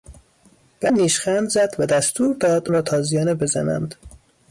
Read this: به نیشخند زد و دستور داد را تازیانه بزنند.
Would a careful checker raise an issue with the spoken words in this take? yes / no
no